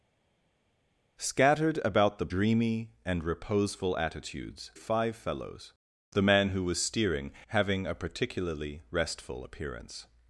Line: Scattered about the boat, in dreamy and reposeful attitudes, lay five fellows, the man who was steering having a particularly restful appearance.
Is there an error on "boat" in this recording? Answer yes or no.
yes